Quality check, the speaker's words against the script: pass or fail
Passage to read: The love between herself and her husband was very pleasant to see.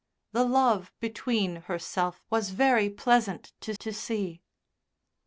fail